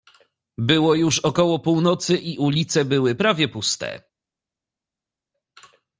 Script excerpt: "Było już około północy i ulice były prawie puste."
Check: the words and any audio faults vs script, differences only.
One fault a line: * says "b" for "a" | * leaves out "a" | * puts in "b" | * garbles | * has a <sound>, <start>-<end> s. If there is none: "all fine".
all fine